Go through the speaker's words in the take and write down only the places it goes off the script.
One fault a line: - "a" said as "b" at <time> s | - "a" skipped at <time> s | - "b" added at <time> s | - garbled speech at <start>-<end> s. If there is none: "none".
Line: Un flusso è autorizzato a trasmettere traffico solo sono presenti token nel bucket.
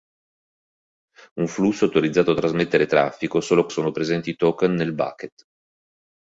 none